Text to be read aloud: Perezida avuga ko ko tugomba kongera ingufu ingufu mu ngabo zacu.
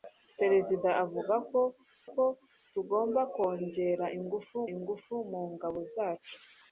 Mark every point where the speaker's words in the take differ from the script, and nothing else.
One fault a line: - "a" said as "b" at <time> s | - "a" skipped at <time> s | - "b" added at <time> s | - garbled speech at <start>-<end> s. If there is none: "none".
none